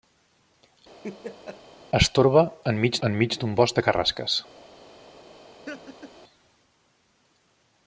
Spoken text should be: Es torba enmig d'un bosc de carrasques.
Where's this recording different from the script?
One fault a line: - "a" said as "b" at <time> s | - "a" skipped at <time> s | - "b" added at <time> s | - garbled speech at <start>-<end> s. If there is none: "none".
- "enmig" added at 3.1 s